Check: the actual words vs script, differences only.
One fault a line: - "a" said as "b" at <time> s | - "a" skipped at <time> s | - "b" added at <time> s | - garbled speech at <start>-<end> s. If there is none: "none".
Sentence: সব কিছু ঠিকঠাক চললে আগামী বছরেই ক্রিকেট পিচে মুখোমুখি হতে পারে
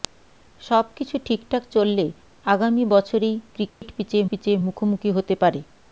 - "পিচে" added at 4.3 s